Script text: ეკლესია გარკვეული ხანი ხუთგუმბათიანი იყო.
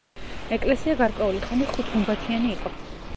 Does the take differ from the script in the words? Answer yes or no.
no